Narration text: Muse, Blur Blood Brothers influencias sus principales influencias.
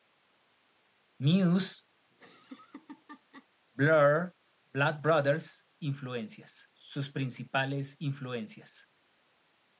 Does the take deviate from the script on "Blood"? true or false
false